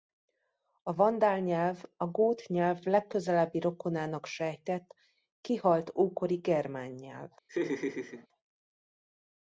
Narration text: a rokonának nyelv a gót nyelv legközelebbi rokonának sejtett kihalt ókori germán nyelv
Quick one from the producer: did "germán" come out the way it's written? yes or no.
yes